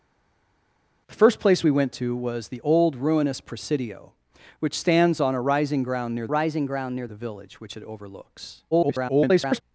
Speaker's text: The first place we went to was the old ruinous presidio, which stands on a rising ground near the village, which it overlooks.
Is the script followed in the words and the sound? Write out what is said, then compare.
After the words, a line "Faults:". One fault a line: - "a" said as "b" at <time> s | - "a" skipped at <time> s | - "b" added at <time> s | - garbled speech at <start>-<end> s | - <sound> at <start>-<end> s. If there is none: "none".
The first place we went to was the old ruinous presidio, which stands on a rising ground near rising ground near the village, which it overlooks. [garbled]
Faults:
- "rising ground near" added at 6.3 s
- garbled speech at 8.7-9.6 s